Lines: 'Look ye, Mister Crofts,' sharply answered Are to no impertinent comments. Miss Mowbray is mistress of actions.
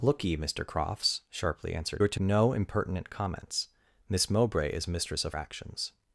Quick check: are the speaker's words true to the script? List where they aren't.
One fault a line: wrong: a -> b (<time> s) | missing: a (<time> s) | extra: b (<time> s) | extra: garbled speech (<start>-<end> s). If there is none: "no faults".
no faults